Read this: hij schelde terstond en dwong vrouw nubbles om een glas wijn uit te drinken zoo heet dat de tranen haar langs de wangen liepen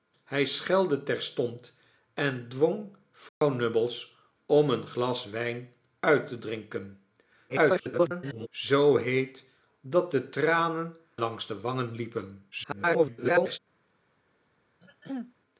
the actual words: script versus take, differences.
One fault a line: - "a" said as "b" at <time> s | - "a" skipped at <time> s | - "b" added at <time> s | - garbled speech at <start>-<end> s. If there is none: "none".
- garbled speech at 7.5-8.5 s
- "haar" skipped at 11.0 s
- garbled speech at 12.5-13.6 s